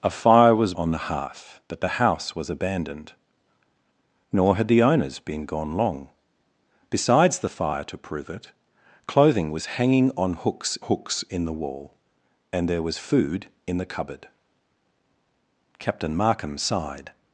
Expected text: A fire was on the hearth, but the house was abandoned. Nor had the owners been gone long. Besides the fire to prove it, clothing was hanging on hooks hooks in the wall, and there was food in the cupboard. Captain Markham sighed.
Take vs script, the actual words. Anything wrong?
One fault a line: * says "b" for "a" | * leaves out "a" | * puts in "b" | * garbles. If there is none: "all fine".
all fine